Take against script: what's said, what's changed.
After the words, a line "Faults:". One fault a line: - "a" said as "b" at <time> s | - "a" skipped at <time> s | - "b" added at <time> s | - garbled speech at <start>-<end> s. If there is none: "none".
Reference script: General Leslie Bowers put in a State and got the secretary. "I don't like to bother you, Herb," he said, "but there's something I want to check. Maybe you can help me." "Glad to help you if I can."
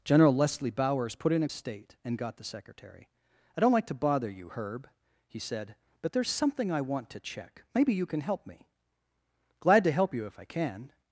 General Leslie Bowers put in a State and got the secretary. "I don't like to bother you, Herb," he said, "but there's something I want to check. Maybe you can help me." "Glad to help you if I can."
Faults:
none